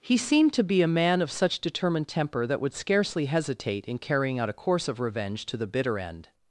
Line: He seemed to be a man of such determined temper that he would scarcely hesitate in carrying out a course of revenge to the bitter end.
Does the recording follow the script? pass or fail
fail